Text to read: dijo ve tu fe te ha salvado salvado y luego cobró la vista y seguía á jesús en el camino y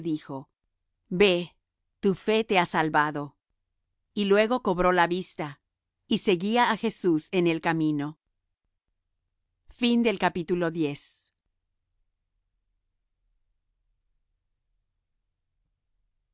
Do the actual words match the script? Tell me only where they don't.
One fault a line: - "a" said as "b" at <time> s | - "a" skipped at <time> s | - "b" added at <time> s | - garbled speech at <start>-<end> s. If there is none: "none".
- "salvado" skipped at 3.4 s